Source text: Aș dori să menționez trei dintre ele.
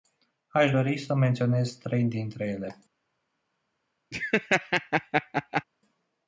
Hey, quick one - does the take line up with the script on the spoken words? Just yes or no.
yes